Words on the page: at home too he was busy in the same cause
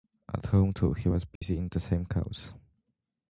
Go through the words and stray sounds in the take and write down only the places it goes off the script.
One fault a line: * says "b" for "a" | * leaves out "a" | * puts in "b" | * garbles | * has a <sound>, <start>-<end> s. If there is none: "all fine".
* has a dropout, 1.4-1.4 s